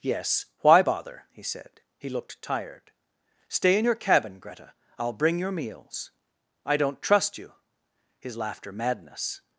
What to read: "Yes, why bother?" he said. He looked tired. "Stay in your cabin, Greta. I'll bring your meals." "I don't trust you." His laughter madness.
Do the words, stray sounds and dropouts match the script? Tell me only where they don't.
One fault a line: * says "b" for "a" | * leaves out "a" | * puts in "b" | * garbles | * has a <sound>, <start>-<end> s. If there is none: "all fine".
all fine